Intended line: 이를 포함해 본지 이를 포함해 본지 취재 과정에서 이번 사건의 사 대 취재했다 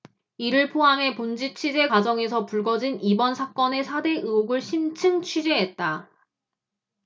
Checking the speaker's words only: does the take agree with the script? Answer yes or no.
no